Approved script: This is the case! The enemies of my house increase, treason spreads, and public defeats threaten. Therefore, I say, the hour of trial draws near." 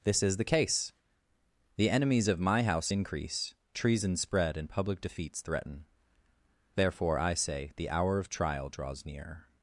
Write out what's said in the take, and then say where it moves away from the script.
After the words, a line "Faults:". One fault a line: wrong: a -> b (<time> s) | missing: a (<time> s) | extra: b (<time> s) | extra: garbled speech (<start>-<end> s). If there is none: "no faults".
This is the case! The enemies of my house increase, treason spread, and public defeats threaten. Therefore, I say, the hour of trial draws near."
Faults:
wrong: spreads -> spread (4.1 s)